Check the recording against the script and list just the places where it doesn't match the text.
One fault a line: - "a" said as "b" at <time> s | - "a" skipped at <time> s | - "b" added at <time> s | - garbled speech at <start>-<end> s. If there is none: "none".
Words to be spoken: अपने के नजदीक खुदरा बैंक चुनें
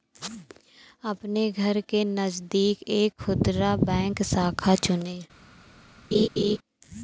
- "घर" added at 1.5 s
- "एक" added at 2.9 s
- "शाखा" added at 4.2 s